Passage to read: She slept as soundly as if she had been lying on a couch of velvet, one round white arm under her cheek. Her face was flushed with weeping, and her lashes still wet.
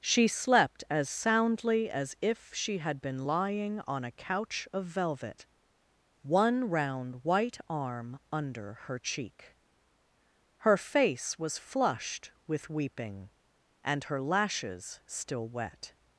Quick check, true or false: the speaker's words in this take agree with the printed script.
true